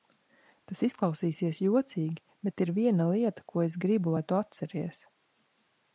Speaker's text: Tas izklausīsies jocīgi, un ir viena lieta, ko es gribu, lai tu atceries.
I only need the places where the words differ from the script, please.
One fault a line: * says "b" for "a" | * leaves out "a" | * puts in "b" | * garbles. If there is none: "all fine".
* says "bet" for "un"